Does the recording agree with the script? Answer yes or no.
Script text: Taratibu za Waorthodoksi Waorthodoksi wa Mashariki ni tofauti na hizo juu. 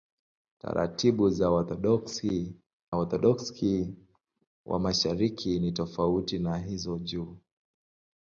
yes